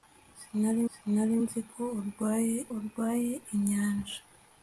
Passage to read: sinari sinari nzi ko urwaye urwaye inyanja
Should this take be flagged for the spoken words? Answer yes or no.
no